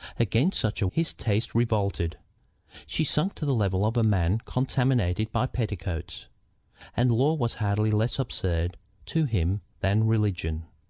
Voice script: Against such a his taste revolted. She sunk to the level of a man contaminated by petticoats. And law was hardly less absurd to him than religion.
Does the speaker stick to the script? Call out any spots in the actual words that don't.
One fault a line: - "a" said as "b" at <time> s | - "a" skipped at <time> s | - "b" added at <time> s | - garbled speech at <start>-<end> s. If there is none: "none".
none